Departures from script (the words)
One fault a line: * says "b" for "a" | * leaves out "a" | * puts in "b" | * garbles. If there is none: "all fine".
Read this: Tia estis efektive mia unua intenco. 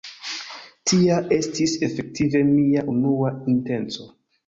all fine